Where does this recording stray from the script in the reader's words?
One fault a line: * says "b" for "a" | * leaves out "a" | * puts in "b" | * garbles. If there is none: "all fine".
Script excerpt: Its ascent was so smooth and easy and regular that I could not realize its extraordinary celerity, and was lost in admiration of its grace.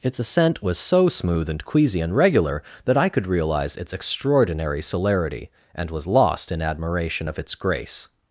* says "queasy" for "easy"
* leaves out "not"